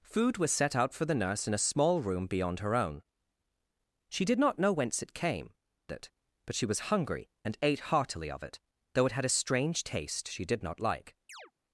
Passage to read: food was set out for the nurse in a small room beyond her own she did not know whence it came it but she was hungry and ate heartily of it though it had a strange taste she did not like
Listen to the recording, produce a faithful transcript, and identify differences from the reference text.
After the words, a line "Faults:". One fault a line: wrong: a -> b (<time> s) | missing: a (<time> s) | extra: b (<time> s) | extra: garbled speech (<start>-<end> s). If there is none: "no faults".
food was set out for the nurse in a small room beyond her own she did not know whence it came it but she was hungry and ate heartily of it though it had a strange taste she did not like
Faults:
no faults